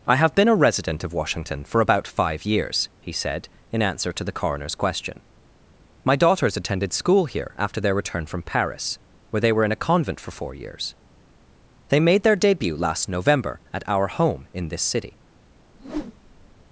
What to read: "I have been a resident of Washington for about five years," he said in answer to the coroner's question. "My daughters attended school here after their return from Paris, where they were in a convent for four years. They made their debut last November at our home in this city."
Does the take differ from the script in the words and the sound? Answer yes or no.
yes